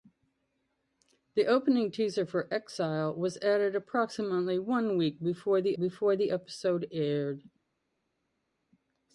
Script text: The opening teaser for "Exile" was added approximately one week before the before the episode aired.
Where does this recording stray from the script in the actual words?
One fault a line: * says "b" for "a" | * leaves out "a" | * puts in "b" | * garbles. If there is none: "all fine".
all fine